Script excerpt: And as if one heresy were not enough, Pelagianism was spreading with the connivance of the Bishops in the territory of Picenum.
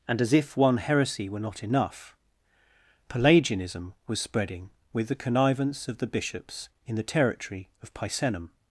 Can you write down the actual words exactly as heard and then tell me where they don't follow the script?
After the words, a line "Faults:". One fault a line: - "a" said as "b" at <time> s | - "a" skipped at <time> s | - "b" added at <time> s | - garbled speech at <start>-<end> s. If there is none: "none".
And as if one heresy were not enough, Pelagianism was spreading with the connivance of the Bishops in the territory of Picenum.
Faults:
none